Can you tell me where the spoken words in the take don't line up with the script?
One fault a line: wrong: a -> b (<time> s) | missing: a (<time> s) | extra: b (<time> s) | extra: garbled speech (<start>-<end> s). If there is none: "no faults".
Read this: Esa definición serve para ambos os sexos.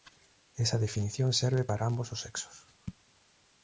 no faults